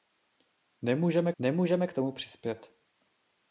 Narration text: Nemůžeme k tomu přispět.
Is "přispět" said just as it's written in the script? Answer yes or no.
yes